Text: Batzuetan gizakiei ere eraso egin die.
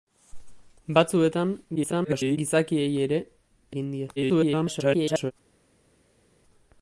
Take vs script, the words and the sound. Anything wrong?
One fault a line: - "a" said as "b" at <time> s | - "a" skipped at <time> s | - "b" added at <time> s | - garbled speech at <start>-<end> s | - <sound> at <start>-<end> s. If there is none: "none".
- garbled speech at 1.8-2.4 s
- "eraso" skipped at 3.2 s
- garbled speech at 4.2-5.3 s